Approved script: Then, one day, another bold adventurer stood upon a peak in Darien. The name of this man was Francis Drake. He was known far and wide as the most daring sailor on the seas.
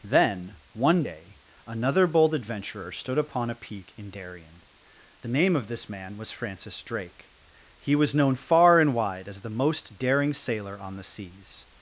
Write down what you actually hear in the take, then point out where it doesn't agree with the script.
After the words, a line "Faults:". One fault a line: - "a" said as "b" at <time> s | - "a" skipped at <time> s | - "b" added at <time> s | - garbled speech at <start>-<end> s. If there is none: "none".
Then, one day, another bold adventurer stood upon a peak in Darien. The name of this man was Francis Drake. He was known far and wide as the most daring sailor on the seas.
Faults:
none